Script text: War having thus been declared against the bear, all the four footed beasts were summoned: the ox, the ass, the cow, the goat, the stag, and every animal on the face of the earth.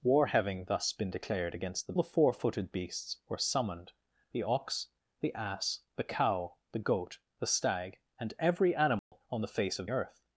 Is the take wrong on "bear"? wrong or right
wrong